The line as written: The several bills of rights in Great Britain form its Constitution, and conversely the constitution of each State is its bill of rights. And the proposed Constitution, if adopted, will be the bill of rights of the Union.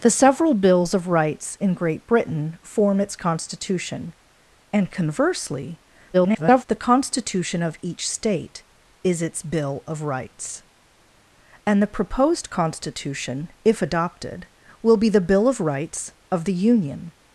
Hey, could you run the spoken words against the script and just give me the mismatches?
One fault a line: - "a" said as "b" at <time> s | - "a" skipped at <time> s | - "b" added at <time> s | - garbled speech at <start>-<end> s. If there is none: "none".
- garbled speech at 6.1-6.6 s